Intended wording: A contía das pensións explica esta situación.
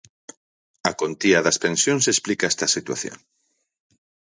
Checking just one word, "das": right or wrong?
right